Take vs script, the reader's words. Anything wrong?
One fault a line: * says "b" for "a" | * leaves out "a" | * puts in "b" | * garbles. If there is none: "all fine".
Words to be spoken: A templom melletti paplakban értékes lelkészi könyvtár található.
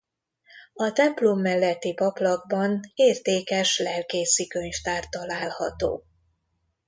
all fine